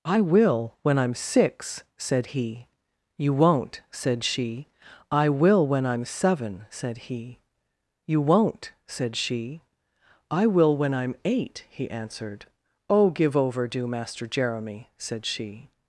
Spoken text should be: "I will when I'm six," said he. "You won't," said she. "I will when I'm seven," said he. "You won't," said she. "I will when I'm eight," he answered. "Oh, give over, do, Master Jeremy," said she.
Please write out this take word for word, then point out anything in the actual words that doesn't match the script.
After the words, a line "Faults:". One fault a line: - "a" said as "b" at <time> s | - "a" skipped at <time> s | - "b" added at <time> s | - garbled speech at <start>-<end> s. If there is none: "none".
"I will when I'm six," said he. "You won't," said she. "I will when I'm seven," said he. "You won't," said she. "I will when I'm eight," he answered. "Oh, give over, do, Master Jeremy," said she.
Faults:
none